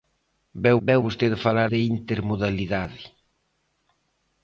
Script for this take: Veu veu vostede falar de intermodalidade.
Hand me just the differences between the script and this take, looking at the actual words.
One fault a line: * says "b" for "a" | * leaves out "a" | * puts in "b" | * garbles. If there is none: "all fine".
all fine